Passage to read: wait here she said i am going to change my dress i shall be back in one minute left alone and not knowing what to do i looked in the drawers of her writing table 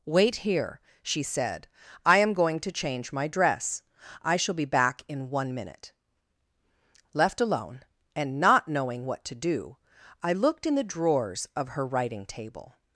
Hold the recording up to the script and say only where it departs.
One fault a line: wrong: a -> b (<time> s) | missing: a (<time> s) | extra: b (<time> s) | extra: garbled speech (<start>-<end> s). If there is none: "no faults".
no faults